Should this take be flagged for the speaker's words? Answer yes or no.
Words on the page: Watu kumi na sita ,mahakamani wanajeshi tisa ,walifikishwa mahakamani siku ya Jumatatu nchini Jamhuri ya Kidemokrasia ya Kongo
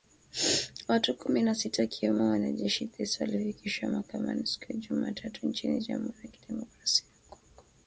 yes